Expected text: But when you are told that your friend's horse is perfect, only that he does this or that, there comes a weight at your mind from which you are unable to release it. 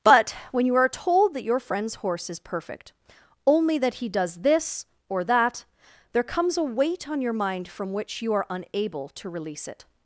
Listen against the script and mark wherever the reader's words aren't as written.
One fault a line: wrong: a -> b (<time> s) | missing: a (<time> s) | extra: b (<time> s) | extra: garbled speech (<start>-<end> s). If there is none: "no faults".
wrong: at -> on (7.1 s)